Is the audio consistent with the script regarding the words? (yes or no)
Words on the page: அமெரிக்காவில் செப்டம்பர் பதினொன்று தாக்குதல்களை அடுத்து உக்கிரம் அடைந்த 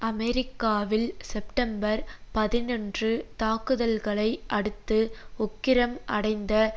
yes